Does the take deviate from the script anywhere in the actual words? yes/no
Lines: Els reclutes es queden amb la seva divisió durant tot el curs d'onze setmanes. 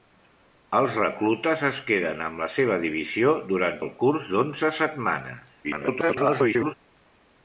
yes